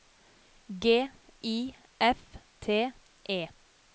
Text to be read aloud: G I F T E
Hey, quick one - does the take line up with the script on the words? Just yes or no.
yes